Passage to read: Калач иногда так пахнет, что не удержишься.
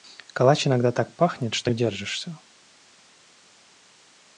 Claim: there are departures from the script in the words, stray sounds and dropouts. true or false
true